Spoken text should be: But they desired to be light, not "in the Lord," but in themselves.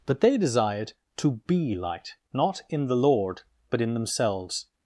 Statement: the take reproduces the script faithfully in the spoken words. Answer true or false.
true